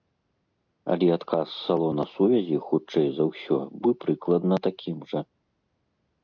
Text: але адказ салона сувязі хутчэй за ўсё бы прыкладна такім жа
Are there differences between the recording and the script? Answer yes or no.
no